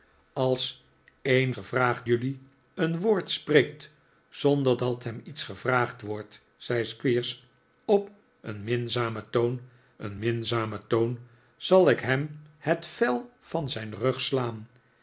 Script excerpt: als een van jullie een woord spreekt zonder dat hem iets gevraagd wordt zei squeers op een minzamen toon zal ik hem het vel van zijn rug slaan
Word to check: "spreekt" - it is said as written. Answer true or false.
true